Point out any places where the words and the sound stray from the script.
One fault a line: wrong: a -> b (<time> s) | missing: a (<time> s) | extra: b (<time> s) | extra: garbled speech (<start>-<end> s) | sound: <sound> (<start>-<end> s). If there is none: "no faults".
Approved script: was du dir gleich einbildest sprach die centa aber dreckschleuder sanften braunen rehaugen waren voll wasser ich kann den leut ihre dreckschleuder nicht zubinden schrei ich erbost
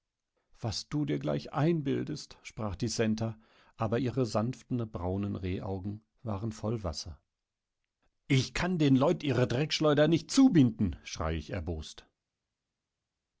wrong: dreckschleuder -> ihre (4.0 s)